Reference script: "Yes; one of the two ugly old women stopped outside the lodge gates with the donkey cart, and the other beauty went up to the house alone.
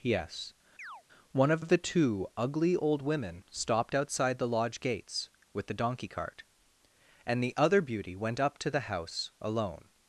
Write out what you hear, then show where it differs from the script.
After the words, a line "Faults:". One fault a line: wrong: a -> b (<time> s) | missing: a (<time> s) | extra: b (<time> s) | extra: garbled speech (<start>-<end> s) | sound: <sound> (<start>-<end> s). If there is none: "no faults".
"Yes; one of of the two ugly old women stopped outside the lodge gates with the donkey cart, and the other beauty went up to the house alone.
Faults:
sound: chirp (0.8-1.0 s)
extra: of (1.6 s)